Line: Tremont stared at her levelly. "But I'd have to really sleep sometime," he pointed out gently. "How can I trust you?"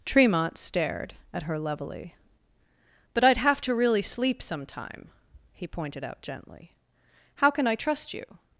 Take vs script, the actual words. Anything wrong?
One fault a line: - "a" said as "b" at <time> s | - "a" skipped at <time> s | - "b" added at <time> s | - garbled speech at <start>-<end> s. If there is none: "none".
none